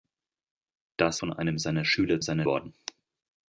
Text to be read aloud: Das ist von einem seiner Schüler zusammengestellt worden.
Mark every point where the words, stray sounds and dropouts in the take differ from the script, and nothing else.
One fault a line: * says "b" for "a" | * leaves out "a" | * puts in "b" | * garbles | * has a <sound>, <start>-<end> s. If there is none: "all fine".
* leaves out "ist"
* says "seiner" for "zusammengestellt"